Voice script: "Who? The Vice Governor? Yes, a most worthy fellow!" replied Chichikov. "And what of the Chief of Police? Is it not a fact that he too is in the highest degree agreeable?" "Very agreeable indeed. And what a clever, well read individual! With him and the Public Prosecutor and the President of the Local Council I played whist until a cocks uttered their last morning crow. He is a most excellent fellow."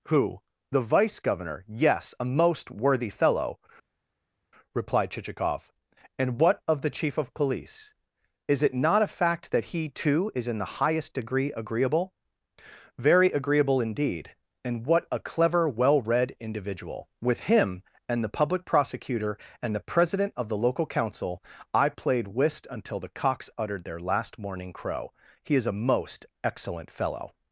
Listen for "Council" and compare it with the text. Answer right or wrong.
right